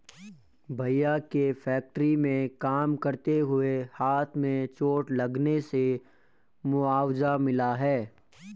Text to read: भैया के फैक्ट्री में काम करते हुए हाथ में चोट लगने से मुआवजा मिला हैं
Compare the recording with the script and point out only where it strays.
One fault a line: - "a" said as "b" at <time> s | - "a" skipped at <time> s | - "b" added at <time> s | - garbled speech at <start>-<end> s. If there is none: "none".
none